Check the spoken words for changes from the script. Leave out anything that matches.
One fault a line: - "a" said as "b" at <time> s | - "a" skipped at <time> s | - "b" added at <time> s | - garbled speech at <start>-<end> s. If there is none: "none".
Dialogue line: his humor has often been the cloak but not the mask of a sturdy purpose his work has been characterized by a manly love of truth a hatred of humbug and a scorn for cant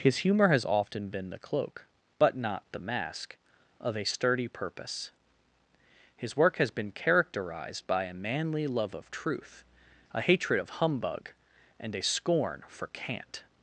none